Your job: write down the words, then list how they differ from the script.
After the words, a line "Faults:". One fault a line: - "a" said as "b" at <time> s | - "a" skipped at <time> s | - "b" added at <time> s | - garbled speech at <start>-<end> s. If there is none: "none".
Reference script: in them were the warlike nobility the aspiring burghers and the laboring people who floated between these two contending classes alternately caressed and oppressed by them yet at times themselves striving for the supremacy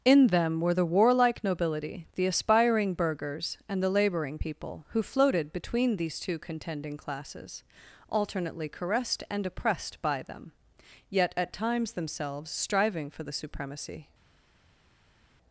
in them were the warlike nobility the aspiring burghers and the laboring people who floated between these two contending classes alternately caressed and oppressed by them yet at times themselves striving for the supremacy
Faults:
none